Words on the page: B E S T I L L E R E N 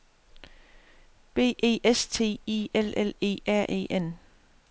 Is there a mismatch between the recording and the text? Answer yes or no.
no